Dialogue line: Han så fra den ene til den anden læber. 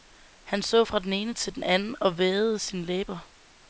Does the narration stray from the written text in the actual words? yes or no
yes